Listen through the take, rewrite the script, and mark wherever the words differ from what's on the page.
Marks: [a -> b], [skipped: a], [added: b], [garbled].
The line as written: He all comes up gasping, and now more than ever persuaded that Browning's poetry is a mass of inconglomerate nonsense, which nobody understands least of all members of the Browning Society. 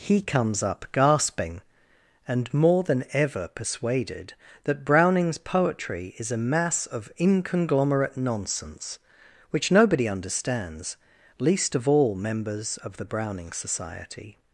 He [skipped: all] comes up gasping, and [skipped: now] more than ever persuaded that Browning's poetry is a mass of inconglomerate nonsense, which nobody understands least of all members of the Browning Society.